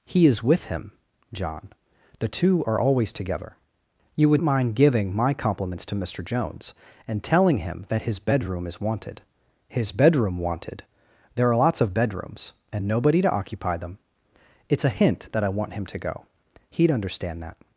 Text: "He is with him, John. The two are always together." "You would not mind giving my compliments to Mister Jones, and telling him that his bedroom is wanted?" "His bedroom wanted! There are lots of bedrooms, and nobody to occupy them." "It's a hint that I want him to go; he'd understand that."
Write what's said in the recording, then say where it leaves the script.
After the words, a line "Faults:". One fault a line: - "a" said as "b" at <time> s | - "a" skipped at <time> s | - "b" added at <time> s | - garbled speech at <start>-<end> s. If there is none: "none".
"He is with him, John. The two are always together." "You would mind giving my compliments to Mister Jones, and telling him that his bedroom is wanted?" "His bedroom wanted! There are lots of bedrooms, and nobody to occupy them." "It's a hint that I want him to go; he'd understand that."
Faults:
- "not" skipped at 4.4 s